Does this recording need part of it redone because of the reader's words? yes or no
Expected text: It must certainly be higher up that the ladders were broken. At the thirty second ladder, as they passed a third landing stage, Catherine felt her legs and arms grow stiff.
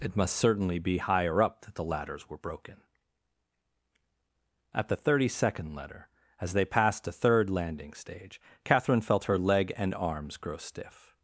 yes